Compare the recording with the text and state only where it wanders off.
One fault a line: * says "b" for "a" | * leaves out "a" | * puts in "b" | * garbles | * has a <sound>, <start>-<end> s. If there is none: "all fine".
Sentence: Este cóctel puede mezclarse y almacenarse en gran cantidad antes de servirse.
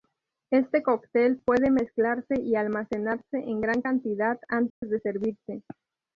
* has a dropout, 4.7-4.8 s